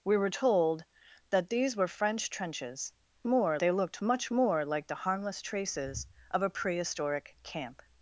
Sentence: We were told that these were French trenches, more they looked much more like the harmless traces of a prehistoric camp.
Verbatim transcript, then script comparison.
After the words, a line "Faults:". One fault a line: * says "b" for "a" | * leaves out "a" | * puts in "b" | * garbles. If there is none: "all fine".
We were told that these were French trenches, more they looked much more like the harmless traces of a prehistoric camp.
Faults:
all fine